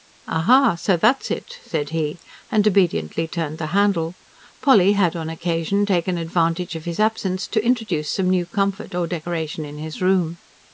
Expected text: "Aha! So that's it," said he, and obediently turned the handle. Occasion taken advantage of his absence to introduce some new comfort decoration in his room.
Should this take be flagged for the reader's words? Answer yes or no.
yes